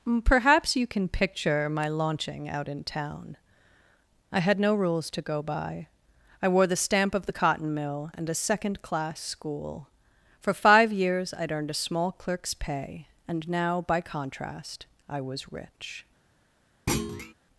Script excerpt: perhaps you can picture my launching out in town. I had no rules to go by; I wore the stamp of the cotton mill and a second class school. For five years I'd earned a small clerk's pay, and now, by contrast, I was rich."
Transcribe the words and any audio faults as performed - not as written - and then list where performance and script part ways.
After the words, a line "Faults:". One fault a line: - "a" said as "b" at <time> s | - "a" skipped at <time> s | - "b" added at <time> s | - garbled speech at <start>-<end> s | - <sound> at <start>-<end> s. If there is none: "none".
perhaps you can picture my launching out in town. I had no rules to go by; I wore the stamp of the cotton mill and a second class school. For five years I'd earned a small clerk's pay, and now, by contrast, I was rich."
Faults:
- thud at 16.9-17.3 s